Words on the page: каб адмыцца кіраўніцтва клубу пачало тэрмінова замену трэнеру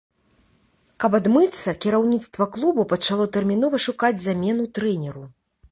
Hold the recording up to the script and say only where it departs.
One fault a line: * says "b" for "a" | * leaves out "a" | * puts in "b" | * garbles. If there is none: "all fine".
* puts in "шукаць"